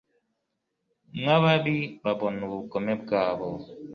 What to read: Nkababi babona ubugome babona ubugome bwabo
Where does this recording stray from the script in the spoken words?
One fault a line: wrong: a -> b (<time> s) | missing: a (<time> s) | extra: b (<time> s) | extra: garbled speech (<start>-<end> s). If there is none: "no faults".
missing: babona ubugome (2.9 s)